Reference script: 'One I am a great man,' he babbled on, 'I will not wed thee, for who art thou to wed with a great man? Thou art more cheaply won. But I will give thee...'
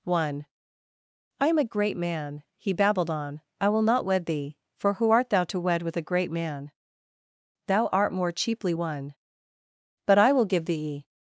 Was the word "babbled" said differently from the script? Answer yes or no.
no